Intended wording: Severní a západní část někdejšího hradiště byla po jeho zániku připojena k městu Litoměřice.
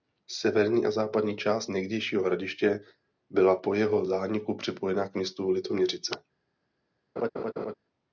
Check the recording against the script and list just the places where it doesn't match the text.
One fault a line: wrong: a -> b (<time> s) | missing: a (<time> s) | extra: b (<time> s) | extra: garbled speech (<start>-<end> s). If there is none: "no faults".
no faults